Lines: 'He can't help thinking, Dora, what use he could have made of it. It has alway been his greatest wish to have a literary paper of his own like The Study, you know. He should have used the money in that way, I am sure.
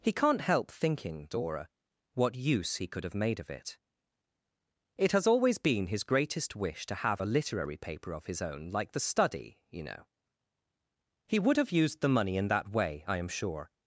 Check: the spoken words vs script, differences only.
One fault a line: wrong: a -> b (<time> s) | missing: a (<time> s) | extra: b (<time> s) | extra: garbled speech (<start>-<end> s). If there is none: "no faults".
wrong: alway -> always (5.3 s)
wrong: should -> would (11.4 s)